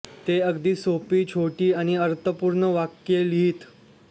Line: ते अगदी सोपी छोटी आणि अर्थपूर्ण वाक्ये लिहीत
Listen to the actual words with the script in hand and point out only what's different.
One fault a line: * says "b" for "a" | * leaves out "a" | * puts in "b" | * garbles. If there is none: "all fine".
all fine